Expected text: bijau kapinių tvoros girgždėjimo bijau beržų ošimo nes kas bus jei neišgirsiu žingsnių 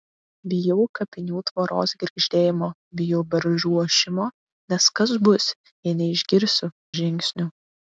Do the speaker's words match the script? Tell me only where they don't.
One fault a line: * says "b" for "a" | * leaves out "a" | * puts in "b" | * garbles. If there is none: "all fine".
all fine